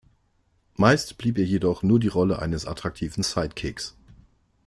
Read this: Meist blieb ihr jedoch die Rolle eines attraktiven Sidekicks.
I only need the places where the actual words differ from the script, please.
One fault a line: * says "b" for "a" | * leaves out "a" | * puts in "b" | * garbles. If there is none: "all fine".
* puts in "nur"